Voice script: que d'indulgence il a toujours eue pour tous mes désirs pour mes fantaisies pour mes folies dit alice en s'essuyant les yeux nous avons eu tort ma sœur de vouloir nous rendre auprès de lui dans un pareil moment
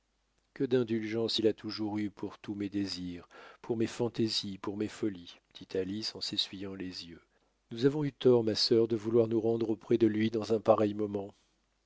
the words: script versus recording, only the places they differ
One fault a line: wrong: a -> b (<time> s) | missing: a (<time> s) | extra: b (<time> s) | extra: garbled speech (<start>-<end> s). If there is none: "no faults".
no faults